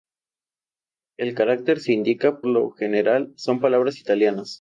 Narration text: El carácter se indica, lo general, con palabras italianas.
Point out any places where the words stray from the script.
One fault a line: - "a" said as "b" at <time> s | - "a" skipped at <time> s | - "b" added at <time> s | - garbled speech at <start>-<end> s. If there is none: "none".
none